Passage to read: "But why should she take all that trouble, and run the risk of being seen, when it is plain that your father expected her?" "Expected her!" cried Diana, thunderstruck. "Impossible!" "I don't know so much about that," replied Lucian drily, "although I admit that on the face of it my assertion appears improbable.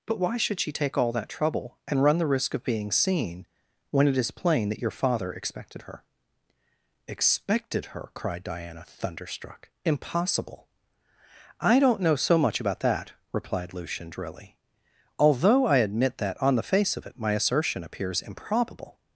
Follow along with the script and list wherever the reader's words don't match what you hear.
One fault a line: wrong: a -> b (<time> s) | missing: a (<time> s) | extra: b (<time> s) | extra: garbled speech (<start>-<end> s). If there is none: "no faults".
no faults